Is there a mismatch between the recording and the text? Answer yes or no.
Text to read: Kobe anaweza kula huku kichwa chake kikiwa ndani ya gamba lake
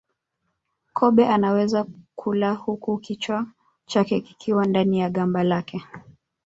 no